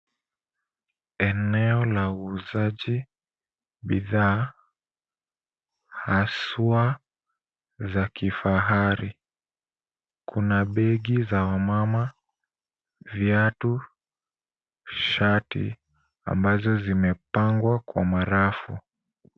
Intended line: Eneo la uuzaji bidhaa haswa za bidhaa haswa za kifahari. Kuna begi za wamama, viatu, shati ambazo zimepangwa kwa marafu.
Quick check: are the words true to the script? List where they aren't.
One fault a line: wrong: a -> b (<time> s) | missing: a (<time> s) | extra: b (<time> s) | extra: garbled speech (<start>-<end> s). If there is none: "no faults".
missing: bidhaa haswa za (8.1 s)